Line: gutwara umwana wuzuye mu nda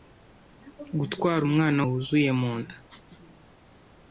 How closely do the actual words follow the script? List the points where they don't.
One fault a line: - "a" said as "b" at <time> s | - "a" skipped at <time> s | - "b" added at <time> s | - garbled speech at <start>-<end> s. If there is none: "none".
none